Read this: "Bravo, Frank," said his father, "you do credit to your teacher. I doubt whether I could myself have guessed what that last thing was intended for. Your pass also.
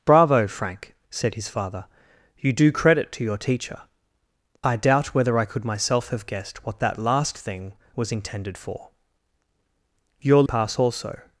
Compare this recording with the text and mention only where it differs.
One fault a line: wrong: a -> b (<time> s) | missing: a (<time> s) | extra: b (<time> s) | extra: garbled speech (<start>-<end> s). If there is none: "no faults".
no faults